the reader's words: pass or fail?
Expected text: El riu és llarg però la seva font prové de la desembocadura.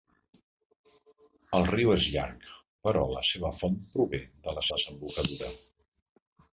pass